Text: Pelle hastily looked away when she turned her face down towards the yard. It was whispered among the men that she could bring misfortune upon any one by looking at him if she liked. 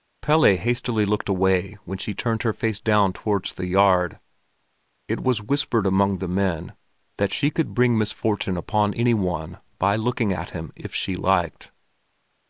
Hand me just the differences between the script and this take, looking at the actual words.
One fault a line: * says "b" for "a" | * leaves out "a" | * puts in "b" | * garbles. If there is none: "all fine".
all fine